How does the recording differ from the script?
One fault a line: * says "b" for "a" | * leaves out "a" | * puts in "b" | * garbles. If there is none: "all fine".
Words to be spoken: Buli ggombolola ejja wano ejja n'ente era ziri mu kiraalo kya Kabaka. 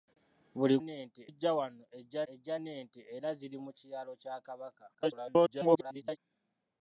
* says "n'ente" for "ggombolola"
* puts in "ejja"
* garbles